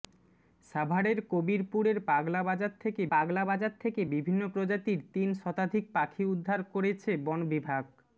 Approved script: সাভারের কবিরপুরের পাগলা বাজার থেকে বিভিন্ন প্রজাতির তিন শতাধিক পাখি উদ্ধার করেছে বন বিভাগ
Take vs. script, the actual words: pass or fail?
fail